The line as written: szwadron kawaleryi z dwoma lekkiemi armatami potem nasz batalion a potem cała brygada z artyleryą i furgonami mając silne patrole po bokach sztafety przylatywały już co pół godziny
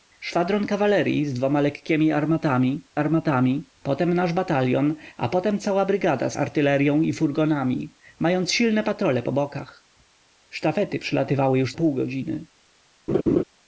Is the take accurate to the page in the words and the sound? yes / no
no